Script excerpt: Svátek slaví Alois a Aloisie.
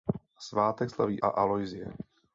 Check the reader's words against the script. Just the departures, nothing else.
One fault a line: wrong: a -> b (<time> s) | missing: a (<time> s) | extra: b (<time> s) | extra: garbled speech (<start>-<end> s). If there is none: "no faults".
missing: Alois (1.2 s)